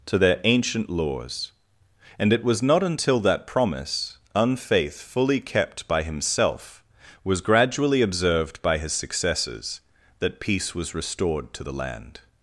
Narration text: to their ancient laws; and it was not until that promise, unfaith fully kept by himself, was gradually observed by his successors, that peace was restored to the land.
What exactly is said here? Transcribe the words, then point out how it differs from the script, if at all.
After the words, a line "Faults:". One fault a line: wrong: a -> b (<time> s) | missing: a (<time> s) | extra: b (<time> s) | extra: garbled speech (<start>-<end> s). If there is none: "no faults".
to their ancient laws; and it was not until that promise, unfaith fully kept by himself, was gradually observed by his successors, that peace was restored to the land.
Faults:
no faults